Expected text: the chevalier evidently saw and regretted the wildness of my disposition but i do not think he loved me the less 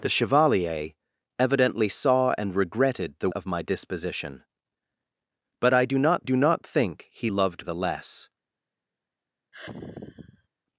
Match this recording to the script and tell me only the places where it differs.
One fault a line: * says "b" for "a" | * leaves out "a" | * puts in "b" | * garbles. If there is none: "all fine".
* leaves out "wildness"
* puts in "do not"
* leaves out "me"